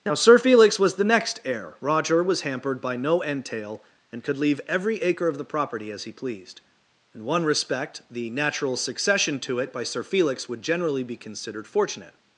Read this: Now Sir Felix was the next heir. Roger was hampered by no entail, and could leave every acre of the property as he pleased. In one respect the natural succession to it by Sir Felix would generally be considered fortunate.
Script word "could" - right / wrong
right